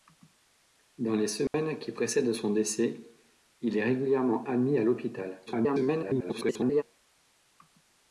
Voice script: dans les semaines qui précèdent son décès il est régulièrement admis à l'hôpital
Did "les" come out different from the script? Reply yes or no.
no